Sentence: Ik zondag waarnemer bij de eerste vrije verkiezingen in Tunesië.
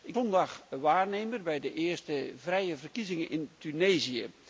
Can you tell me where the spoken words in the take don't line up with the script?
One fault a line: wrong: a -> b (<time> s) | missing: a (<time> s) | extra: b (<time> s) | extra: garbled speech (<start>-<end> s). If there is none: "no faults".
no faults